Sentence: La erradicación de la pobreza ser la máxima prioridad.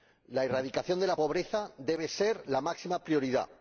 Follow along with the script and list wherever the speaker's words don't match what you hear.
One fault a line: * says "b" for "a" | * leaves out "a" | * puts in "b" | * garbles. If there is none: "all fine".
* puts in "debe"